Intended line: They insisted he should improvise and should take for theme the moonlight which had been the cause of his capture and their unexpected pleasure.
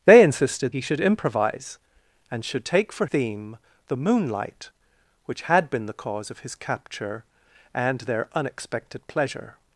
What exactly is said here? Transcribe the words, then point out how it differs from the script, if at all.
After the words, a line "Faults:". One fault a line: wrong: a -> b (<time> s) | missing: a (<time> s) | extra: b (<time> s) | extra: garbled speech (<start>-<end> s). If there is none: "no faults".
They insisted he should improvise and should take for theme the moonlight which had been the cause of his capture and their unexpected pleasure.
Faults:
no faults